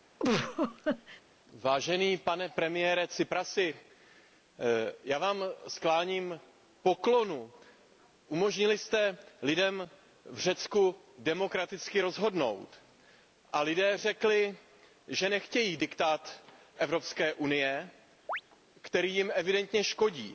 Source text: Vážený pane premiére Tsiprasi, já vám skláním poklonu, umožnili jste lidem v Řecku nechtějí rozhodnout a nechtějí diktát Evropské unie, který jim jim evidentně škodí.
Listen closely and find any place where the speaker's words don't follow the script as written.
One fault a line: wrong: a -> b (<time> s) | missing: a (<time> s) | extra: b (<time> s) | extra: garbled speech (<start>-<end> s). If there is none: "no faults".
wrong: nechtějí -> demokraticky (11.2 s)
extra: lidé řekli že (13.6 s)
missing: jim (19.3 s)